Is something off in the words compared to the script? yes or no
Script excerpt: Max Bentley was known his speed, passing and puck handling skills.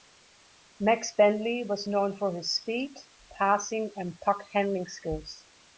yes